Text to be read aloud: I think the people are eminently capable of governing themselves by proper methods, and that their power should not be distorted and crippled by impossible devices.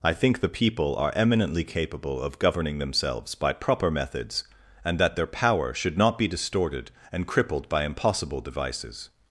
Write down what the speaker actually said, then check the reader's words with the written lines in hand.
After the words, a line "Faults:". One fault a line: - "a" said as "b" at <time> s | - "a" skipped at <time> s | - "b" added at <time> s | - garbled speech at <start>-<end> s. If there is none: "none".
I think the people are eminently capable of governing themselves by proper methods, and that their power should not be distorted and crippled by impossible devices.
Faults:
none